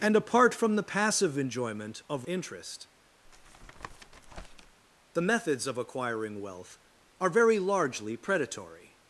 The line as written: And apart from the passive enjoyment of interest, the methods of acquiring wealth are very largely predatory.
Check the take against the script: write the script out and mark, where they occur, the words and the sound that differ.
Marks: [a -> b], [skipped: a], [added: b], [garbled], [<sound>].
And apart from the passive enjoyment of interest, [tap] the methods of acquiring wealth are very largely predatory.